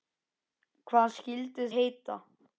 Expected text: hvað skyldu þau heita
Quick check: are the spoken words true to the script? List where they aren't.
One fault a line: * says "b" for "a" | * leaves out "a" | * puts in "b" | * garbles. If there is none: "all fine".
* leaves out "þau"